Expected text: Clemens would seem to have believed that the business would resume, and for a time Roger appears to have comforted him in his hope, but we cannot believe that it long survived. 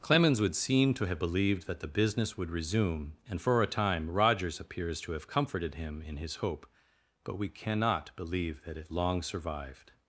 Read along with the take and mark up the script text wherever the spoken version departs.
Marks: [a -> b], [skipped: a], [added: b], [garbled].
Clemens would seem to have believed that the business would resume, and for a time [Roger -> Rogers] appears to have comforted him in his hope, but we cannot believe that it long survived.